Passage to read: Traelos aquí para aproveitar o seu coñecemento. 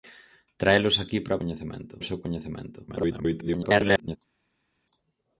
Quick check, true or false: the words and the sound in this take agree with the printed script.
false